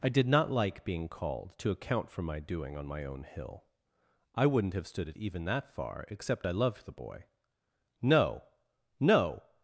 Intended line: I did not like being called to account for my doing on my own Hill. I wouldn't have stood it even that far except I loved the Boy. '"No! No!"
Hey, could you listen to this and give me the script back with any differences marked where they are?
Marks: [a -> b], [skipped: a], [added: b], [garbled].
I did not like being called to account for my doing on my own Hill. I wouldn't have stood it even that far except I loved the Boy. '"No! No!"